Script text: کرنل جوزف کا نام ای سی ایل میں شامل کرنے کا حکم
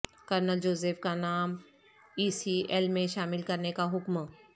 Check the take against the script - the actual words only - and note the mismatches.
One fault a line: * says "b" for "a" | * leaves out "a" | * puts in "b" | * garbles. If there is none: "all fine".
all fine